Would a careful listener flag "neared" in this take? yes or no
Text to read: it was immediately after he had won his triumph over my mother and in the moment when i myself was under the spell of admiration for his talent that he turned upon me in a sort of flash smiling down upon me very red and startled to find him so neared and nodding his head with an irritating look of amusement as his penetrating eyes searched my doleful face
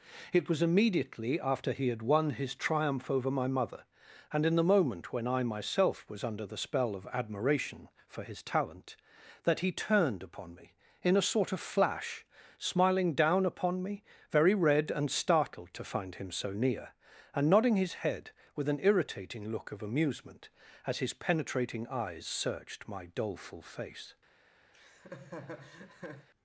yes